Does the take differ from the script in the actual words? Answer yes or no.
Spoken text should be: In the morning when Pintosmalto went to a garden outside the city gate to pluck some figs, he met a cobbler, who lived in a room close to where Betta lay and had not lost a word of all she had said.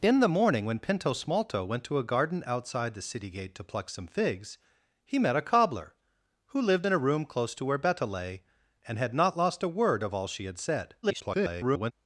yes